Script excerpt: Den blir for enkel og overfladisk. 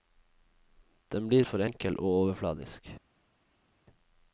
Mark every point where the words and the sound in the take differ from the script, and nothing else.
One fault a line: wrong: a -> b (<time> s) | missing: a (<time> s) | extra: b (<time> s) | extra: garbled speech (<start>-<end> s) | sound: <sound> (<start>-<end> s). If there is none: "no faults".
no faults